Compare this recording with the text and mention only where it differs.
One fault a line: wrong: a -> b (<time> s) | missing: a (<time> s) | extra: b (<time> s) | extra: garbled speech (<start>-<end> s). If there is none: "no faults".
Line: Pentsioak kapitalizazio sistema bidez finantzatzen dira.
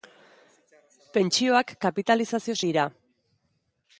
missing: sistema bidez finantzatzen (2.5 s)